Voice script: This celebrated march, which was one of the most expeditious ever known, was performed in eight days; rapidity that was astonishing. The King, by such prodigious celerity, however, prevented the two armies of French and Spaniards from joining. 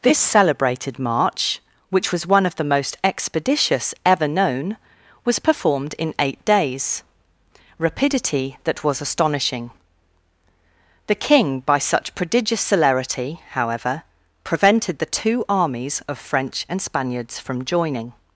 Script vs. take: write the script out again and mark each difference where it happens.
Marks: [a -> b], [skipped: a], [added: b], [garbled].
This celebrated march, which was one of the most expeditious ever known, was performed in eight days; rapidity that was astonishing. The King, by such prodigious celerity, however, prevented the two armies of French and Spaniards from joining.